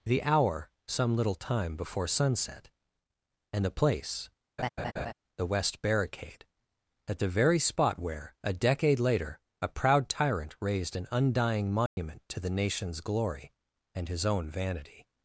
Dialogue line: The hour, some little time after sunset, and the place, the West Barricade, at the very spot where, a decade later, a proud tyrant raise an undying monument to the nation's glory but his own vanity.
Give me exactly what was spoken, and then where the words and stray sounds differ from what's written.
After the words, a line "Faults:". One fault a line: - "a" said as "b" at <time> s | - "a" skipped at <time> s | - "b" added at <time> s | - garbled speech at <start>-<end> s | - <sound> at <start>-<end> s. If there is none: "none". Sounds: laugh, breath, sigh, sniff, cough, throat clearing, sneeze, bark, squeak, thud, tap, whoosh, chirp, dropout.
The hour, some little time before sunset, and the place, the West Barricade, at the very spot where, a decade later, a proud tyrant raised an undying monument to the nation's glory and his own vanity.
Faults:
- "after" said as "before" at 1.8 s
- laugh at 4.6-5.1 s
- "raise" said as "raised" at 10.6 s
- dropout at 11.9-12.0 s
- "but" said as "and" at 13.9 s